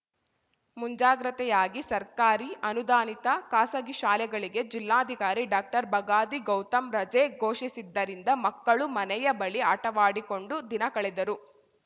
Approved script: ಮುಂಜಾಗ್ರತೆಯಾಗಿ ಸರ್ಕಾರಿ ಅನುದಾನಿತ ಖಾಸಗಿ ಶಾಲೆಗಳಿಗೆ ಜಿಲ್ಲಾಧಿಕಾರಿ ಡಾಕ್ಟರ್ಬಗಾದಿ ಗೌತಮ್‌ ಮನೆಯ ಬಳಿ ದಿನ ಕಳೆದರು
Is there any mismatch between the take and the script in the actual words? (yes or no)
yes